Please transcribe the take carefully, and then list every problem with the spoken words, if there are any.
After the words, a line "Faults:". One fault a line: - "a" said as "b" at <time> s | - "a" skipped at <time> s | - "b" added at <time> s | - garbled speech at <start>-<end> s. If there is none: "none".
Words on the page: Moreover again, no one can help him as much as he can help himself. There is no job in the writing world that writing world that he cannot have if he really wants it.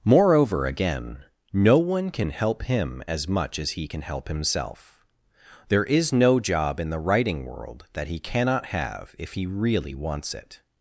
Moreover again, no one can help him as much as he can help himself. There is no job in the writing world that he cannot have if he really wants it.
Faults:
- "writing world that" skipped at 8.1 s